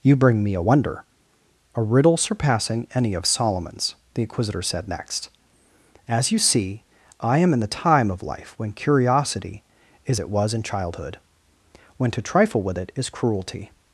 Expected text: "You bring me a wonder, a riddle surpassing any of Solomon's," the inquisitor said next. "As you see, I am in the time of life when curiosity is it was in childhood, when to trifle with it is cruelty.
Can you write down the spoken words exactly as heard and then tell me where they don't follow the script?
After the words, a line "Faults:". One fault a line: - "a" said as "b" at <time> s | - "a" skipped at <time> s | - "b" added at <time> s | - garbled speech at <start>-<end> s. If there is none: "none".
"You bring me a wonder, a riddle surpassing any of Solomon's," the inquisitor said next. "As you see, I am in the time of life when curiosity is it was in childhood, when to trifle with it is cruelty.
Faults:
none